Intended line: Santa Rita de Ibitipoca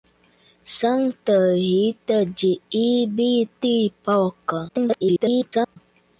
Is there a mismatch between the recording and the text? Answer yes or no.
yes